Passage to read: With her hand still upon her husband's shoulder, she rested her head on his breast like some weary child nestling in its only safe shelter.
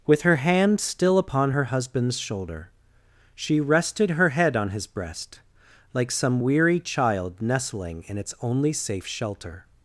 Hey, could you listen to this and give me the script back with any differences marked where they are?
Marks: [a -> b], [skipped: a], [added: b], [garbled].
With her hand still upon her husband's shoulder, she rested her head on his breast like some weary child nestling in its only safe shelter.